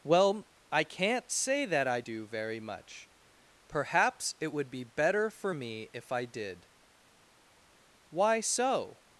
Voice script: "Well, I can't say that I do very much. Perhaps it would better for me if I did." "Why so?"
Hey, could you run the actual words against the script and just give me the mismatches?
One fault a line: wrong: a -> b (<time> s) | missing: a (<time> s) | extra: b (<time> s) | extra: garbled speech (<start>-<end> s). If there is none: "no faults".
extra: be (4.7 s)